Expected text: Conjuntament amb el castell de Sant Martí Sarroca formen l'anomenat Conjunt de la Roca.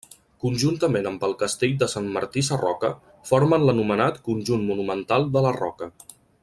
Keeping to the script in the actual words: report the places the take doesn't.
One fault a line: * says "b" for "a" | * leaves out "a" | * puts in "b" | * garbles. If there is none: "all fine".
* puts in "monumental"